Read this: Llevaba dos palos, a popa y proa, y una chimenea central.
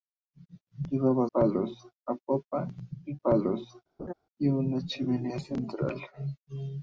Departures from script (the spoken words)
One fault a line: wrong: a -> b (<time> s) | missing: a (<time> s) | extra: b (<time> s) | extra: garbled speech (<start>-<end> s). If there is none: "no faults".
missing: dos (1.3 s)
wrong: proa -> palos (3.2 s)